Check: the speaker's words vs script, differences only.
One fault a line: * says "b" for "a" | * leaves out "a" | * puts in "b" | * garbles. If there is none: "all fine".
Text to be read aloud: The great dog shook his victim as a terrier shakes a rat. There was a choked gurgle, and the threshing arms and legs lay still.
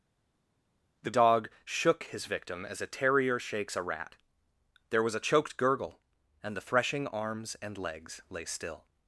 * leaves out "great"